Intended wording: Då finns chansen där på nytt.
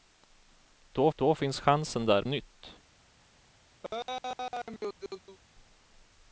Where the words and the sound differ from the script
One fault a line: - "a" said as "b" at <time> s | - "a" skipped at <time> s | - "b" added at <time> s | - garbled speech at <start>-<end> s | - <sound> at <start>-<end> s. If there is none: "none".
- "då" added at 1.1 s
- "på" skipped at 2.2 s
- laugh at 3.8-5.4 s